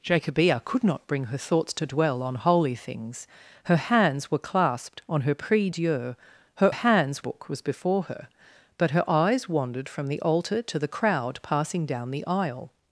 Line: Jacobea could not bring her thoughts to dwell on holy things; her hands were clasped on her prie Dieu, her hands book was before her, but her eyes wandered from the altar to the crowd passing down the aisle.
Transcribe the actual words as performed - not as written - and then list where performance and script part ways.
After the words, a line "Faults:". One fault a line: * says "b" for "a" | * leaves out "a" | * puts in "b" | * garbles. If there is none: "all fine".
Jacobea could not bring her thoughts to dwell on holy things; her hands were clasped on her prie Dieu, her hands book was before her, but her eyes wandered from the altar to the crowd passing down the aisle.
Faults:
all fine